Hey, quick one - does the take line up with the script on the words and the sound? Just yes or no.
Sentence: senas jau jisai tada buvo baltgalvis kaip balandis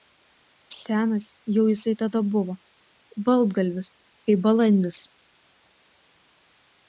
yes